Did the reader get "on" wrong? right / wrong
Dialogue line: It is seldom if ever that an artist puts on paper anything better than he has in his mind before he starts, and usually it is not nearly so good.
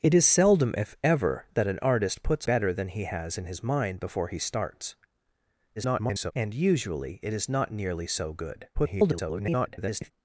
wrong